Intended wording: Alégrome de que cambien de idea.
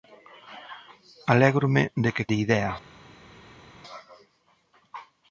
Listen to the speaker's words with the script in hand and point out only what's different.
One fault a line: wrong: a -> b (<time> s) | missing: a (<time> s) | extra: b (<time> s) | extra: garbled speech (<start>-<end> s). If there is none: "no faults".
missing: cambien (2.3 s)